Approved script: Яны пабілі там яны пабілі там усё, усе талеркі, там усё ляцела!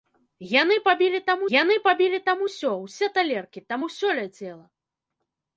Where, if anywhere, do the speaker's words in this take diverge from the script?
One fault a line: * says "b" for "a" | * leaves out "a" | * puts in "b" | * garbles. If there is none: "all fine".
all fine